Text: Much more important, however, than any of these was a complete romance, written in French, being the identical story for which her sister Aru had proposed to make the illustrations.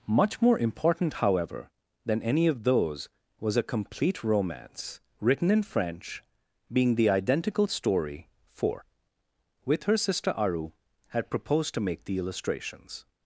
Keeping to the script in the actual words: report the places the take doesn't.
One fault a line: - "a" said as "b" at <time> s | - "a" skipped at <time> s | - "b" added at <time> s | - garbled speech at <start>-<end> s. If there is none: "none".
- "these" said as "those" at 2.6 s
- "which" said as "with" at 9.7 s